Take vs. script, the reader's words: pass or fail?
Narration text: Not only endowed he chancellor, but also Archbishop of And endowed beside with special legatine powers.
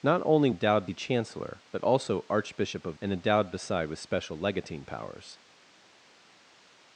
pass